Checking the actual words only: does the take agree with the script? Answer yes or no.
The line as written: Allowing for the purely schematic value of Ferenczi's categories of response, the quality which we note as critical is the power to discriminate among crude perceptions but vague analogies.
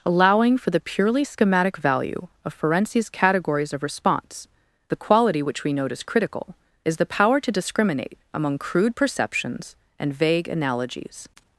no